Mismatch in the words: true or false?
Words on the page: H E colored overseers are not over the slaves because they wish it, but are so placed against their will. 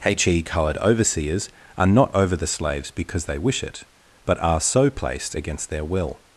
false